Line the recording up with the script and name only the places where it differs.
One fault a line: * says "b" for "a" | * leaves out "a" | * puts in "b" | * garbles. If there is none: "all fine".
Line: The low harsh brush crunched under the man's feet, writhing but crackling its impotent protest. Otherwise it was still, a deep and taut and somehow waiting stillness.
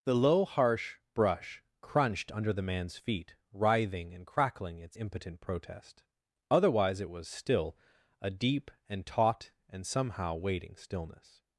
* says "and" for "but"